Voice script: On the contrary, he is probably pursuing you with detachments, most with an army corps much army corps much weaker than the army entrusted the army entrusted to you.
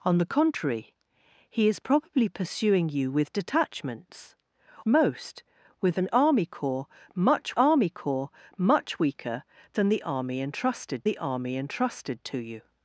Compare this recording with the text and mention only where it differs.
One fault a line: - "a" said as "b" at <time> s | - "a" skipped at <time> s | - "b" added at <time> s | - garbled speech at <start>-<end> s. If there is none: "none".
none